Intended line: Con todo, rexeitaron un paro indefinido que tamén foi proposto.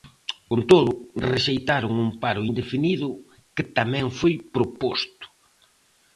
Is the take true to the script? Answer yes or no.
yes